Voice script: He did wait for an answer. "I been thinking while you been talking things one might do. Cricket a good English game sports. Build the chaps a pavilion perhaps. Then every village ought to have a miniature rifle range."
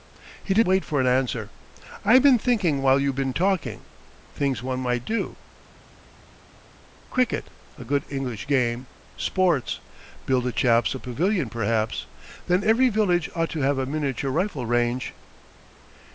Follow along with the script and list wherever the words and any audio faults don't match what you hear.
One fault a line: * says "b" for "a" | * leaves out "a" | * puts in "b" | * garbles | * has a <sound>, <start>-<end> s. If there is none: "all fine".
all fine